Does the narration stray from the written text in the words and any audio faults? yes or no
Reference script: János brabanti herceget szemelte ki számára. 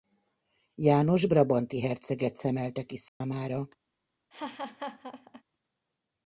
yes